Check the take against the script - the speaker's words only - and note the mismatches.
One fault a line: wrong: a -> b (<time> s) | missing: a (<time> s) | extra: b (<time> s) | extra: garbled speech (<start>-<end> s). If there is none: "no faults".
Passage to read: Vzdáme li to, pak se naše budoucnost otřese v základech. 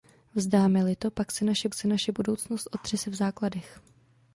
extra: se naše (1.7 s)